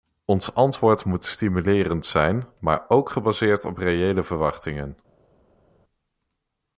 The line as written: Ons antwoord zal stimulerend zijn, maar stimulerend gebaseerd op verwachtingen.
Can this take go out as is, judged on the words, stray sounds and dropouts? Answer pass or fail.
fail